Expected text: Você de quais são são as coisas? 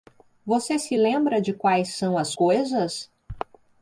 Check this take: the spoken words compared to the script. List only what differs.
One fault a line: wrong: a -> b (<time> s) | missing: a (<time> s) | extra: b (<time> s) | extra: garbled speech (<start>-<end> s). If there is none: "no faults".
extra: se lembra (0.8 s)
missing: são (2.2 s)